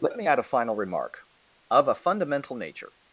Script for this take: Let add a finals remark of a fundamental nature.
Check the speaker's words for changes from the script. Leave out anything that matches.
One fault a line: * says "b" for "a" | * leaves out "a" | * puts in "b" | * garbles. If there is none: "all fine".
* puts in "me"
* says "final" for "finals"